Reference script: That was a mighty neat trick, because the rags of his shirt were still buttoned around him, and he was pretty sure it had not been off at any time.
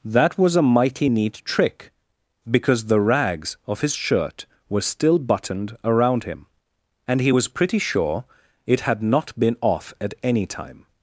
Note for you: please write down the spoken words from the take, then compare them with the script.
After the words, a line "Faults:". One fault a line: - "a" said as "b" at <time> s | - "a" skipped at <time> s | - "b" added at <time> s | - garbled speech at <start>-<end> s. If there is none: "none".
That was a mighty neat trick, because the rags of his shirt were still buttoned around him, and he was pretty sure it had not been off at any time.
Faults:
none